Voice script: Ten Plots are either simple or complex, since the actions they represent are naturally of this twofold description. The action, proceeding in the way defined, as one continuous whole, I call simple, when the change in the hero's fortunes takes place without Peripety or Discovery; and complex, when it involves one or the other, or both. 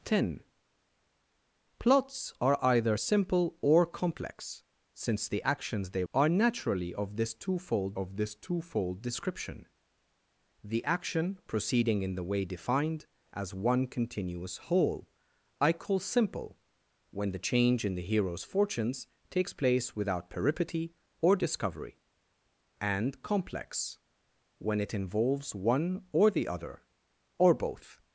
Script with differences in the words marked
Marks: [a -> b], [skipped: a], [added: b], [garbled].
Ten Plots are either simple or complex, since the actions they [skipped: represent] are naturally of this twofold [added: of this twofold] description. The action, proceeding in the way defined, as one continuous whole, I call simple, when the change in the hero's fortunes takes place without Peripety or Discovery; and complex, when it involves one or the other, or both.